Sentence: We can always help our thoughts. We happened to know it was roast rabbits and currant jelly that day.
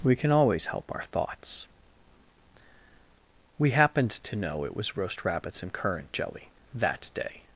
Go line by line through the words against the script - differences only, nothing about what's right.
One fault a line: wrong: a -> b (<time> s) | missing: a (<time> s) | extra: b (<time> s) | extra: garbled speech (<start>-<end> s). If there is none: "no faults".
no faults